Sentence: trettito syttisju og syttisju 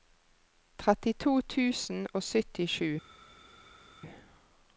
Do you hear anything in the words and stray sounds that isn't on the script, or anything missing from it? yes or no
yes